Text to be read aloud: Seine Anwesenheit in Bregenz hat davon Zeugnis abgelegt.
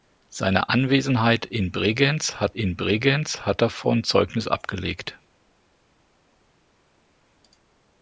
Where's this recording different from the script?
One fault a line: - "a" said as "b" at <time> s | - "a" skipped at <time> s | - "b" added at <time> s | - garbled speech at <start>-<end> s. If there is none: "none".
- "in Bregenz hat" added at 2.5 s